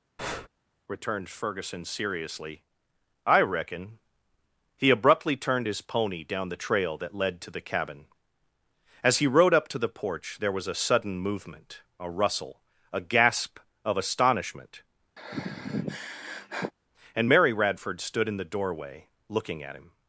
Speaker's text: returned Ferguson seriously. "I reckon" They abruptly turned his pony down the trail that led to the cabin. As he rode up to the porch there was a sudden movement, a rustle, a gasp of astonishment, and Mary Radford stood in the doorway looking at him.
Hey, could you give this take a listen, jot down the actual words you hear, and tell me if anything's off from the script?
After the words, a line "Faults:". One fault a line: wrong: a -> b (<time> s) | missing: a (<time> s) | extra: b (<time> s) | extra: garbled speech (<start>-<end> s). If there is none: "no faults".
returned Ferguson seriously. "I reckon" He abruptly turned his pony down the trail that led to the cabin. As he rode up to the porch there was a sudden movement, a rustle, a gasp of astonishment, and Mary Radford stood in the doorway looking at him.
Faults:
wrong: They -> He (4.8 s)